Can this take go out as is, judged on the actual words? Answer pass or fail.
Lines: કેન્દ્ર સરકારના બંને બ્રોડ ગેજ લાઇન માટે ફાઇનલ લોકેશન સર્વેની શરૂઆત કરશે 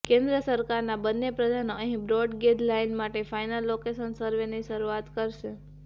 fail